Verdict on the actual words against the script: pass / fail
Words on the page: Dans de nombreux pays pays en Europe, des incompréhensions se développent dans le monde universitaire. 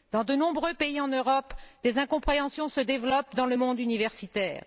fail